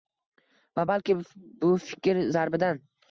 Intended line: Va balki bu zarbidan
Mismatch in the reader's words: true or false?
true